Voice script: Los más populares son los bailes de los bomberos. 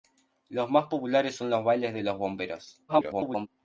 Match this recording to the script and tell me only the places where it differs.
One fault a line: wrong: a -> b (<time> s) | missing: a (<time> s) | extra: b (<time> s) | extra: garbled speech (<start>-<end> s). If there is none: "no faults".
extra: garbled speech (2.9-3.5 s)